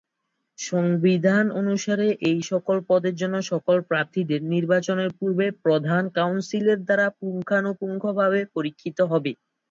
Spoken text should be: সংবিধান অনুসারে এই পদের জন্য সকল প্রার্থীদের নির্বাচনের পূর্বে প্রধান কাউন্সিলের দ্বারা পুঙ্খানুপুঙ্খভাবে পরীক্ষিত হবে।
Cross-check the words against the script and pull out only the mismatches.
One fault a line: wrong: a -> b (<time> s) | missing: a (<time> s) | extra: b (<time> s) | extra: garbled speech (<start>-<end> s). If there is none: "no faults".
extra: সকল (2.5 s)